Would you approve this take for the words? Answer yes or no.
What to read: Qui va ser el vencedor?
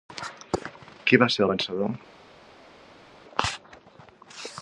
yes